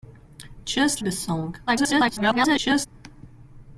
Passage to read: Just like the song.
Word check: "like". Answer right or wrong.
wrong